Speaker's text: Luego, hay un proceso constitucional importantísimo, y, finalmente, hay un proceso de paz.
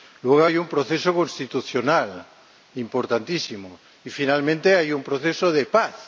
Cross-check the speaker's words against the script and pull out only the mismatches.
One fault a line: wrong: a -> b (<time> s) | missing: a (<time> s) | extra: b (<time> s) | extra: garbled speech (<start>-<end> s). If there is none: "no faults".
no faults